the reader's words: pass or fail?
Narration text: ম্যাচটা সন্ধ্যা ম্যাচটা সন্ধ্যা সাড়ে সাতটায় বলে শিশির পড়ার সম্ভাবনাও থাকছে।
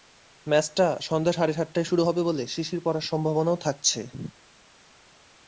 fail